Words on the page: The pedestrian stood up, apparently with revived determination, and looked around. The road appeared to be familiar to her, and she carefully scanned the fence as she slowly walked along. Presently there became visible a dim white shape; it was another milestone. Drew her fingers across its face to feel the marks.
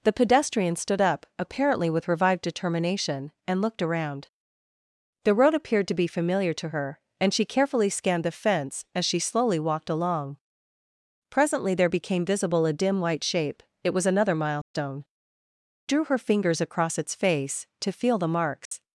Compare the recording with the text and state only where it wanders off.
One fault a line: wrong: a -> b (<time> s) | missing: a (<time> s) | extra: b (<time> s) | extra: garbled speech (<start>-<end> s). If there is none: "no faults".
no faults